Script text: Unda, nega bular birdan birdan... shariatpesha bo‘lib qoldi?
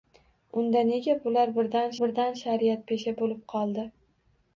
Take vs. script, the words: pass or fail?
pass